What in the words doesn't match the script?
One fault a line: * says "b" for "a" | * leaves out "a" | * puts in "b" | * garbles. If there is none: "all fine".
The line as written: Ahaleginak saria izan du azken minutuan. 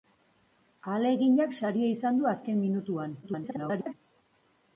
* garbles